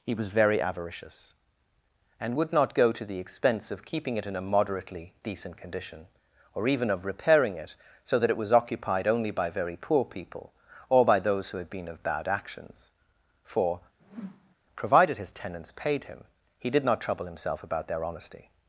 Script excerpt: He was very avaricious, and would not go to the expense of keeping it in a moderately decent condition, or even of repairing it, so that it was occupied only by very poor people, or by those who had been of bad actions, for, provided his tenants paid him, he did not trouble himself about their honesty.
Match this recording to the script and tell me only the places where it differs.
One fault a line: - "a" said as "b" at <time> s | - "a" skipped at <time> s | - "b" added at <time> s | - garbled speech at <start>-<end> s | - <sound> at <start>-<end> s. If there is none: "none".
- whoosh at 14.0-14.6 s